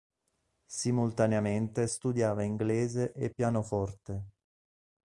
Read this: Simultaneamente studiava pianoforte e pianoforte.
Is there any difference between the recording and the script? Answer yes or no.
yes